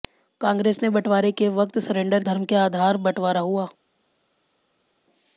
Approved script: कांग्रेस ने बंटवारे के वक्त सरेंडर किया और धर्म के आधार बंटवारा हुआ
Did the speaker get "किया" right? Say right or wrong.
wrong